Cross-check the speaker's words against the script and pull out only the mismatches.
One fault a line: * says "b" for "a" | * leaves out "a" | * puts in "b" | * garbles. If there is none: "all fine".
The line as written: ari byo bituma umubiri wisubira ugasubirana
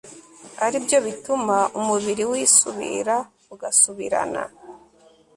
all fine